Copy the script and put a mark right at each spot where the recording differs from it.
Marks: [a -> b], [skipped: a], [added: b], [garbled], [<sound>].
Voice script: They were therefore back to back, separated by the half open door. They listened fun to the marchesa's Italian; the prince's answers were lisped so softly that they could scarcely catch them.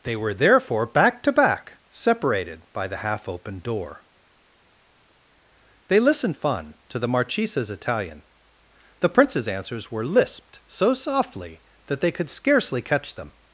They were therefore back to back, separated by the half open door. They listened fun to the marchesa's Italian; the prince's answers were lisped so softly that they could scarcely catch them.